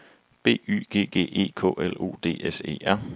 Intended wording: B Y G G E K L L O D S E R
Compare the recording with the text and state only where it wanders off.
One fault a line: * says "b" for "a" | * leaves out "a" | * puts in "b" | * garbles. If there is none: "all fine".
* leaves out "L"